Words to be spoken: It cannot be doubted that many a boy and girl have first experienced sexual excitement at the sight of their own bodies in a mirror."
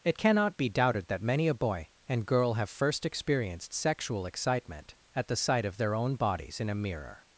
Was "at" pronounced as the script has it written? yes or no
yes